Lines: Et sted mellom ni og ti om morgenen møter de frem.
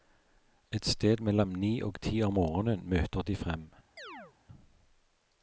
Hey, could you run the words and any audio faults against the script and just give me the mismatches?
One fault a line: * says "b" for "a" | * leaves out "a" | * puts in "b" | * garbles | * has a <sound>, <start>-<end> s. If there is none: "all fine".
* has a chirp, 4.0-4.3 s